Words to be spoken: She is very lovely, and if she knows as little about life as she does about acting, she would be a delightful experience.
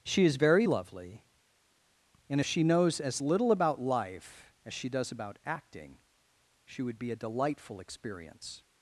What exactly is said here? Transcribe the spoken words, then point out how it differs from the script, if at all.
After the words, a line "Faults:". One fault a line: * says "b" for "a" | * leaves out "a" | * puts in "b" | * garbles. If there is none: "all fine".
She is very lovely, and if she knows as little about life as she does about acting, she would be a delightful experience.
Faults:
all fine